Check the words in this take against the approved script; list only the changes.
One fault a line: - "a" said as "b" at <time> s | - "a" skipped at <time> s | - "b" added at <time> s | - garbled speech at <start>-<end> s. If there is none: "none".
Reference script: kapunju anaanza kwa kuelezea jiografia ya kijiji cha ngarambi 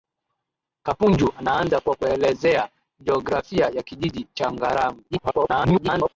- garbled speech at 5.1-6.1 s